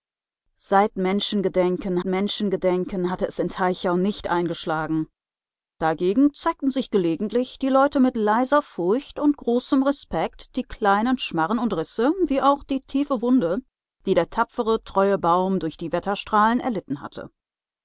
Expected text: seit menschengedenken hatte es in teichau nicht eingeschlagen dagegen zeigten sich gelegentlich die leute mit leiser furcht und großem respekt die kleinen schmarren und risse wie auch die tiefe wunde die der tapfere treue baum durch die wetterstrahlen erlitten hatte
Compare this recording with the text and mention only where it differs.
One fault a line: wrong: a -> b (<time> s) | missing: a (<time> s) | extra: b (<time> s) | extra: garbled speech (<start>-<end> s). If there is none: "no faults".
extra: menschengedenken (2.0 s)